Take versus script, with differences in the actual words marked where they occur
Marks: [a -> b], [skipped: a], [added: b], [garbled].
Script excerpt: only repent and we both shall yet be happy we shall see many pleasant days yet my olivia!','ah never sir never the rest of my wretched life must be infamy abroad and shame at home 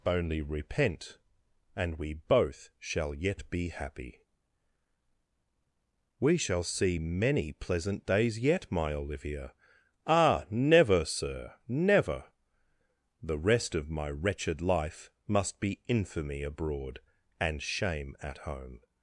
only repent and we both shall yet be happy we shall see many pleasant days yet my olivia!','ah never sir never the rest of my wretched life must be infamy abroad and shame at home